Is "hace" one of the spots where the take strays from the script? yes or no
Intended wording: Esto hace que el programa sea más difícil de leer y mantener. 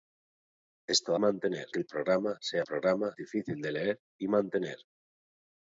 yes